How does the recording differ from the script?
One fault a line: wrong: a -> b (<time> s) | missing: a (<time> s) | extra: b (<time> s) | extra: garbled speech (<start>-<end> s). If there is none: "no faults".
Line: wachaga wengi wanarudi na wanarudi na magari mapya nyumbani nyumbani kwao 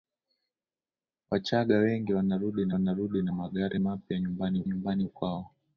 no faults